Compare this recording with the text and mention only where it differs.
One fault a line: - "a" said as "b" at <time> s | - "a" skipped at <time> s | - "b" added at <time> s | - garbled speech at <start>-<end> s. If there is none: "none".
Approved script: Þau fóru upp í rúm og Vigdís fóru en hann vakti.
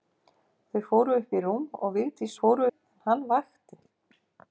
none